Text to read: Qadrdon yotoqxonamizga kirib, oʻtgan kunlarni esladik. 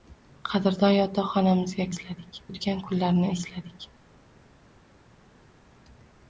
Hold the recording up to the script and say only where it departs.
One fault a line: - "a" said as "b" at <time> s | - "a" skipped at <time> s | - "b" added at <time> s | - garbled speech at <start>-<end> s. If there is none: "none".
- "kirib" said as "esladik" at 1.9 s